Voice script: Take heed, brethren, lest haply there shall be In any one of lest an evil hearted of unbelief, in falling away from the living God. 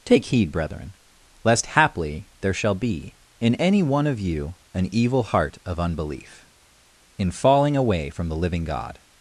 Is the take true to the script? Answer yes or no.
no